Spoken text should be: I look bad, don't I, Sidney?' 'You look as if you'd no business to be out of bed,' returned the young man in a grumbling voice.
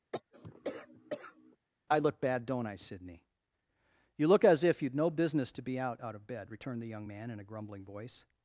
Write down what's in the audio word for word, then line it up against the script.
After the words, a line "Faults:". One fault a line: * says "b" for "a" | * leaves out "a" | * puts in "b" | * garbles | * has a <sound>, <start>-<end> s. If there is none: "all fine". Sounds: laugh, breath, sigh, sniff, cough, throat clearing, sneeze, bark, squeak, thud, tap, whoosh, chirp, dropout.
I look bad, don't I, Sidney?' 'You look as if you'd no business to be out out of bed,' returned the young man in a grumbling voice.
Faults:
* has a cough, 0.1-1.6 s
* puts in "out"